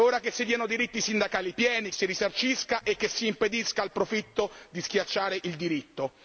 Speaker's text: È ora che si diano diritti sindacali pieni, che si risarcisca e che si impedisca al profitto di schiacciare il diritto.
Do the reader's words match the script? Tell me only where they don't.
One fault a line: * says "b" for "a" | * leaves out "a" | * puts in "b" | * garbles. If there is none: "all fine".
* leaves out "che"